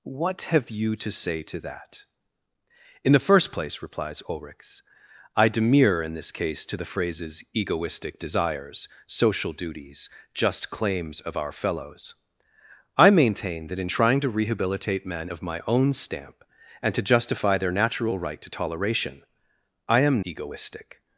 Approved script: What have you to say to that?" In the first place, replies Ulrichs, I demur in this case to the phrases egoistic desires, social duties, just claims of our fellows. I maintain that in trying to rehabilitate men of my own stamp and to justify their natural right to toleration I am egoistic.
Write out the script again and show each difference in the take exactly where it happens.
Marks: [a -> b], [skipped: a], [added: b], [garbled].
What have you to say to that?" In the first place, replies Ulrichs, I demur in this case to the phrases egoistic desires, social duties, just claims of our fellows. I maintain that in trying to rehabilitate men of my own stamp and to justify their natural right to toleration I am egoistic.